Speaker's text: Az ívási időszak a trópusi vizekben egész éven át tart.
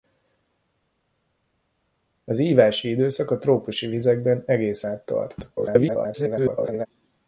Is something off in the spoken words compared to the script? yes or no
yes